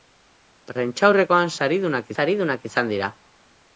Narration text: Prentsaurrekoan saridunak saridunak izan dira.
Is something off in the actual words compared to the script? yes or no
no